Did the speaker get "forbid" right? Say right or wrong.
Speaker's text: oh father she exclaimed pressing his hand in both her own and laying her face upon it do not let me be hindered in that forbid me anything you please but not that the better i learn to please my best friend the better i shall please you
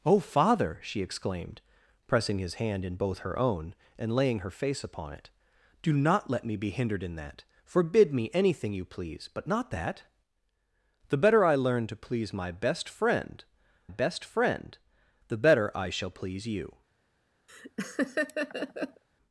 right